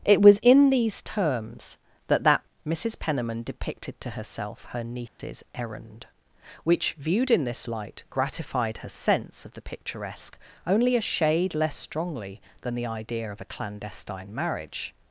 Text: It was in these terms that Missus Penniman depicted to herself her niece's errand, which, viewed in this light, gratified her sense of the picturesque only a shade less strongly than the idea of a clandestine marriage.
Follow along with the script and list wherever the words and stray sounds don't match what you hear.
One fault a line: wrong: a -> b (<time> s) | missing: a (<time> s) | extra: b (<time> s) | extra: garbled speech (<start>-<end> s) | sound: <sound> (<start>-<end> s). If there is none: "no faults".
extra: that (2.2 s)
sound: dropout (5.1-5.2 s)